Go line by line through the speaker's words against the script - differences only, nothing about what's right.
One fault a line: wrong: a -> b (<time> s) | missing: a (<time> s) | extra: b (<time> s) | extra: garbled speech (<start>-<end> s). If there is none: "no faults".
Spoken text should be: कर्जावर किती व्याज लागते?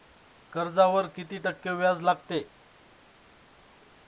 extra: टक्के (1.4 s)